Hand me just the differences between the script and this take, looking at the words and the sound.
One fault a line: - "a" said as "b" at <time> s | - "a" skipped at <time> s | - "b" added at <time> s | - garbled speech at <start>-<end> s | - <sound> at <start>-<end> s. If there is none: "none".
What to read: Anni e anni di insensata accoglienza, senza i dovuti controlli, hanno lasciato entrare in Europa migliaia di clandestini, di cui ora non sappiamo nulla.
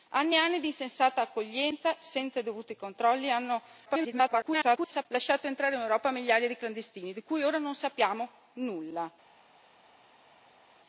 - garbled speech at 3.9-5.1 s